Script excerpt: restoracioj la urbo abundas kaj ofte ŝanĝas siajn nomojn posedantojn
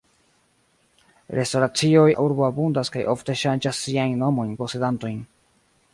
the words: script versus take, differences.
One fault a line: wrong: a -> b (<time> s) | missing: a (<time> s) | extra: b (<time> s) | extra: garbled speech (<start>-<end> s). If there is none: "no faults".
no faults